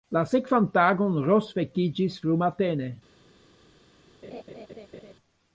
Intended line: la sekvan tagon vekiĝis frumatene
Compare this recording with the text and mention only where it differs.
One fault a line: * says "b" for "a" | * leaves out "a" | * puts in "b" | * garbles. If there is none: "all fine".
* puts in "ros"